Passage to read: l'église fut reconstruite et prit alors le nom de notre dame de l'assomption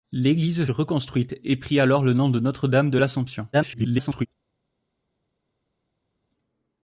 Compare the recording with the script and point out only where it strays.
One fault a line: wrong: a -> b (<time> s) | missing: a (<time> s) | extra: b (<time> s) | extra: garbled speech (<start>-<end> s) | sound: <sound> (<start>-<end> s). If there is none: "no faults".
missing: fut (0.7 s)
extra: garbled speech (3.5-4.3 s)